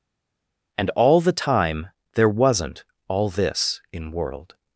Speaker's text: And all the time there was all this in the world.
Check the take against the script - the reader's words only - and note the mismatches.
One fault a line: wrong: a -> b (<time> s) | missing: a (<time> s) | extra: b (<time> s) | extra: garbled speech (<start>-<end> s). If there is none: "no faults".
wrong: was -> wasn't (2.3 s)
missing: the (4.1 s)